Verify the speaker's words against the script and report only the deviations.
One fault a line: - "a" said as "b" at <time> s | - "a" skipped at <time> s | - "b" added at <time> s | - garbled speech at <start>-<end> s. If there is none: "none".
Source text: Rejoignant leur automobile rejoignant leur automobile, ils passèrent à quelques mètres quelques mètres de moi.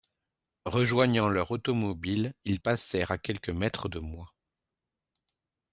- "rejoignant leur automobile" skipped at 2.3 s
- "quelques mètres" skipped at 3.9 s